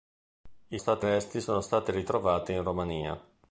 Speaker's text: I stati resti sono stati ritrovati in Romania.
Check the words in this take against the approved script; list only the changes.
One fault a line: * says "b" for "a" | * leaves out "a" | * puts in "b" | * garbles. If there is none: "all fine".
all fine